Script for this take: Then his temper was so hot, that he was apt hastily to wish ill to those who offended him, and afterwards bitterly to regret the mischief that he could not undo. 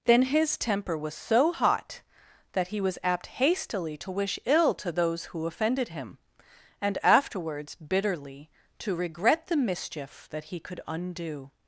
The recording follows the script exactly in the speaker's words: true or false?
false